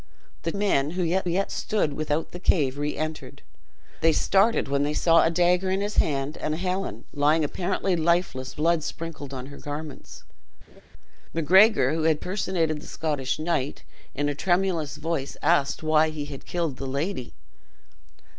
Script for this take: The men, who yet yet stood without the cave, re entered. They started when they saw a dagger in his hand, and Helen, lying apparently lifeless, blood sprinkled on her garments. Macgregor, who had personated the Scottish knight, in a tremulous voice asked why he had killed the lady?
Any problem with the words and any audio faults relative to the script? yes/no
yes